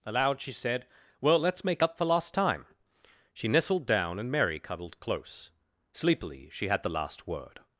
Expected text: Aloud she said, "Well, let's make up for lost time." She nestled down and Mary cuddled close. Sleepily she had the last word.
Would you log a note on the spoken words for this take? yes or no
no